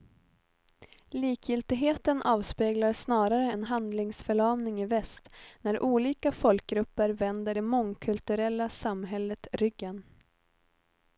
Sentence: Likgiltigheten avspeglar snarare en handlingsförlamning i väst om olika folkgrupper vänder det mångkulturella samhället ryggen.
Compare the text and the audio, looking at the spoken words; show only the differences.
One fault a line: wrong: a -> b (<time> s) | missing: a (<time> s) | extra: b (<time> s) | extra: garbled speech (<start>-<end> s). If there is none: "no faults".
wrong: om -> när (5.6 s)